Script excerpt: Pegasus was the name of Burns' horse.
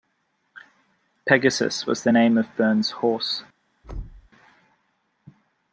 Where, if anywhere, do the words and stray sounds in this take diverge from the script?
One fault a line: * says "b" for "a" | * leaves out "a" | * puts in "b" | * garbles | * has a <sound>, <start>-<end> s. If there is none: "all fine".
* has a thud, 3.8-4.3 s